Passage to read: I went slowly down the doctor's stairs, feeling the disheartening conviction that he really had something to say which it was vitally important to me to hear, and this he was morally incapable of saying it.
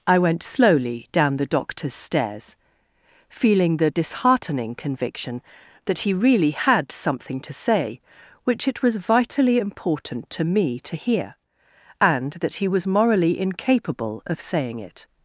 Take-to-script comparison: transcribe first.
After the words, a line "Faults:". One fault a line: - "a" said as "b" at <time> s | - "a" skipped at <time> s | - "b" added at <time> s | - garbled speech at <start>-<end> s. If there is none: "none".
I went slowly down the doctor's stairs, feeling the disheartening conviction that he really had something to say which it was vitally important to me to hear, and that he was morally incapable of saying it.
Faults:
- "this" said as "that" at 12.3 s